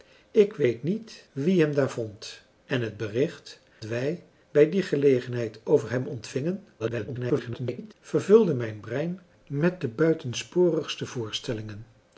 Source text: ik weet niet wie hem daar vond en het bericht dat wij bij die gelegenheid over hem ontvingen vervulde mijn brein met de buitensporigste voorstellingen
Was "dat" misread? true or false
true